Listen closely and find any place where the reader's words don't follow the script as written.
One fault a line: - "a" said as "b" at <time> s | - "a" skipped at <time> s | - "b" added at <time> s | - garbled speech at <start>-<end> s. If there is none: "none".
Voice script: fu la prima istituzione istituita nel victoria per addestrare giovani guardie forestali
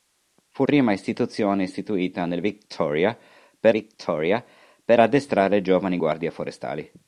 - "la" skipped at 0.7 s
- "victoria per" added at 3.7 s